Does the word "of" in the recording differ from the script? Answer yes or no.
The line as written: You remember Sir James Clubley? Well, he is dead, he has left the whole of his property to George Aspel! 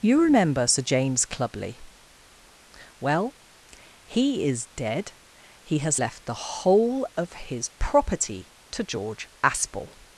no